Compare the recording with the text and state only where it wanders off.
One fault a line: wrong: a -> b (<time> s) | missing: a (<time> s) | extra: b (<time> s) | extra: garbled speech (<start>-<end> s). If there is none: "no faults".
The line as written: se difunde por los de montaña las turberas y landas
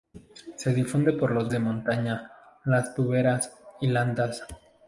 no faults